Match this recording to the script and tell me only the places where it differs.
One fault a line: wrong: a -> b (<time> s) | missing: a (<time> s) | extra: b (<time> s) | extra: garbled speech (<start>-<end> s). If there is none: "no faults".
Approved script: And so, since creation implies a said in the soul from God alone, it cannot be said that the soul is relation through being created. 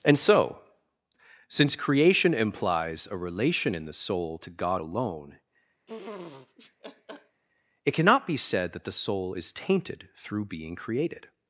wrong: said -> relation (3.2 s)
wrong: from -> to (4.4 s)
wrong: relation -> tainted (9.5 s)